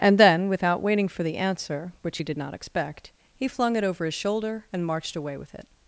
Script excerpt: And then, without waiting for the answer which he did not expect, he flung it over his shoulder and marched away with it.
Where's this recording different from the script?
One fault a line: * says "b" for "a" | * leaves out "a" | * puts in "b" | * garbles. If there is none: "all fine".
all fine